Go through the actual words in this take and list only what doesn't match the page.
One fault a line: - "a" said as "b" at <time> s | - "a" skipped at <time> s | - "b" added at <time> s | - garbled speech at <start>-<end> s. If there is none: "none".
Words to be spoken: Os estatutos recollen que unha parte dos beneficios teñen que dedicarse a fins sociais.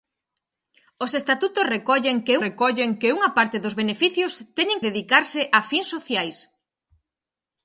- "recollen que" added at 2.5 s
- "que" skipped at 4.8 s